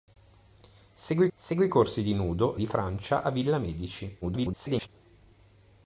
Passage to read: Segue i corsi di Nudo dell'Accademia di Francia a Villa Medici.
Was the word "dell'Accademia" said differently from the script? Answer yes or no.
yes